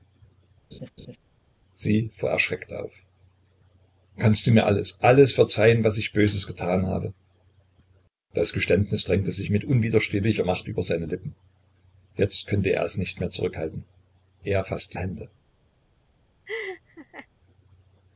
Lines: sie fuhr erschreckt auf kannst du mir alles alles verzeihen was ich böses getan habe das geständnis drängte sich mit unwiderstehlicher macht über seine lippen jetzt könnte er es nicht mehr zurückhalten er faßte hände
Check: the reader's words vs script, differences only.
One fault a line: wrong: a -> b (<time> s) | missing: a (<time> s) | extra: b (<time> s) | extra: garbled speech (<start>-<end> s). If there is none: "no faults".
no faults